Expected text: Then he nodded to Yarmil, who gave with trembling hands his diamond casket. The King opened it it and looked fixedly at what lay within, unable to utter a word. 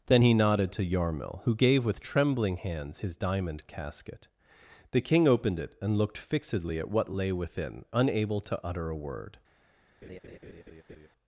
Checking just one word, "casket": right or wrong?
right